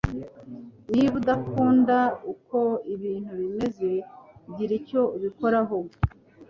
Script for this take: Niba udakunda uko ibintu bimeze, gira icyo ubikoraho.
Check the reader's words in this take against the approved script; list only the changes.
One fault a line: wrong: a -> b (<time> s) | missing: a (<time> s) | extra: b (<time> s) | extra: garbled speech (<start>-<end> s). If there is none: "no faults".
no faults